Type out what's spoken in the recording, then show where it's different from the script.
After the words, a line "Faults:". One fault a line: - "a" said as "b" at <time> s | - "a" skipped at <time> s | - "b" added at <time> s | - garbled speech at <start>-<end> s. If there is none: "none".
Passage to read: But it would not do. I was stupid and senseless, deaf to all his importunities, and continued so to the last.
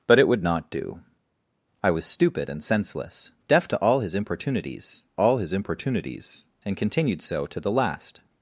But it would not do. I was stupid and senseless, deaf to all his importunities all his importunities, and continued so to the last.
Faults:
- "all his importunities" added at 5.1 s